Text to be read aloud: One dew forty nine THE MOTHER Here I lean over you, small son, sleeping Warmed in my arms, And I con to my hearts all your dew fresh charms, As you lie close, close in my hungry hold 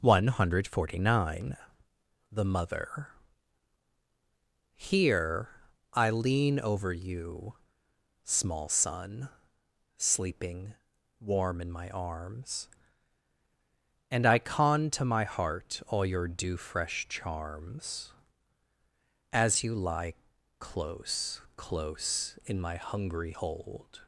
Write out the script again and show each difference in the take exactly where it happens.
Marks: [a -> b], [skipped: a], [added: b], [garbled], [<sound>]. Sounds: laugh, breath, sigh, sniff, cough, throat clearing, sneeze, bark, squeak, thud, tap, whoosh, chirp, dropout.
One [dew -> hundred] forty nine THE MOTHER Here I lean over you, small son, sleeping [Warmed -> Warm] in my arms, And I con to my [hearts -> heart] all your dew fresh charms, As you lie close, close in my hungry hold